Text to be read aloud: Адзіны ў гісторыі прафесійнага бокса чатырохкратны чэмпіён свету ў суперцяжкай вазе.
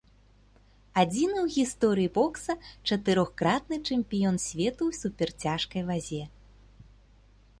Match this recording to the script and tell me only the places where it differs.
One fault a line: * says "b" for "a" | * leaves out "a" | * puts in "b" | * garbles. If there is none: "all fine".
* leaves out "прафесійнага"